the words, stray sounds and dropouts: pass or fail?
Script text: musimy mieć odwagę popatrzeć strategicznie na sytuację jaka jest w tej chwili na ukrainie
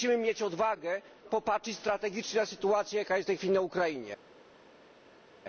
pass